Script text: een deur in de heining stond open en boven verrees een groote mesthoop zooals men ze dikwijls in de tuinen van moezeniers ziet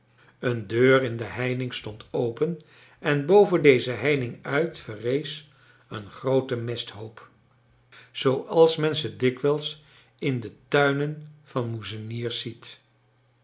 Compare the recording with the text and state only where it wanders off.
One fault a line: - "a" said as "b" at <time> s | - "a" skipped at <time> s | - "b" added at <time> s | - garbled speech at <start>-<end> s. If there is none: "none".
- "deze heining uit" added at 3.6 s